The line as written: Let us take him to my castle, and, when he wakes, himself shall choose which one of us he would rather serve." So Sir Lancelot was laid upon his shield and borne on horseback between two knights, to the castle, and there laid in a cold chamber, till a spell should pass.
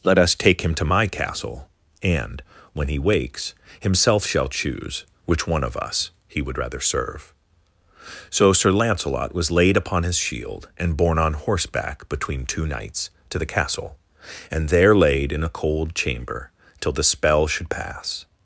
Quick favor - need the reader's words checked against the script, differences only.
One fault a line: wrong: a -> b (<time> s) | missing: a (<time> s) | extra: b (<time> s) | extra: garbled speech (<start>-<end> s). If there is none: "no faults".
wrong: a -> the (16.9 s)